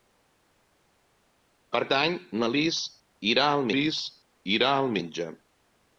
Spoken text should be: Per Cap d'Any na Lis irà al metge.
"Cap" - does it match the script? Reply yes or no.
no